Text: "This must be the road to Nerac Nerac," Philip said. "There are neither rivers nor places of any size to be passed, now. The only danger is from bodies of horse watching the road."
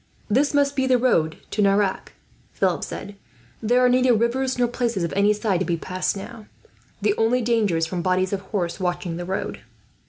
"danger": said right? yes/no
yes